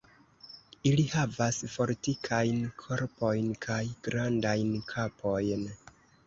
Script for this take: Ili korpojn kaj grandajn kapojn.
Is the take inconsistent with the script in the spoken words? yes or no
yes